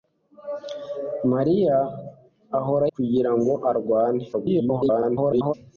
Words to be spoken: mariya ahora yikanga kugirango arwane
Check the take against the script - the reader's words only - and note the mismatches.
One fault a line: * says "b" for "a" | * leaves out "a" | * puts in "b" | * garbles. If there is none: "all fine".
* leaves out "yikanga"
* garbles